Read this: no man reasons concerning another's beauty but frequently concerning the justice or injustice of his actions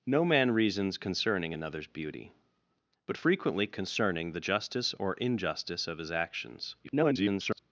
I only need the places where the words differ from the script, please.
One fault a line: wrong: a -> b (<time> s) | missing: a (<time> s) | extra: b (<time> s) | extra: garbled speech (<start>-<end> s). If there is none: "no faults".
extra: garbled speech (6.8-7.6 s)